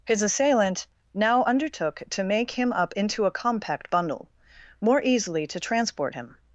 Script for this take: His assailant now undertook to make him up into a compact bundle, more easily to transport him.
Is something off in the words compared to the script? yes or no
no